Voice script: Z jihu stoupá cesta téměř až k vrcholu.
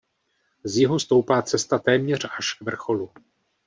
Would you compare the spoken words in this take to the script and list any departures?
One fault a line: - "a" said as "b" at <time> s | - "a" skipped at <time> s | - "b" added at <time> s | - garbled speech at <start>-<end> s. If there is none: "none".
none